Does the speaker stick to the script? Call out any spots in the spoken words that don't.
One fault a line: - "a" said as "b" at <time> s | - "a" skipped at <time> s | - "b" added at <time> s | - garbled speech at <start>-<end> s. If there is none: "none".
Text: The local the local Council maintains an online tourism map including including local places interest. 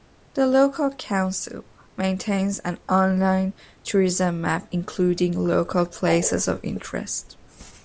- "the local" skipped at 0.9 s
- "including" skipped at 5.4 s
- "of" added at 6.5 s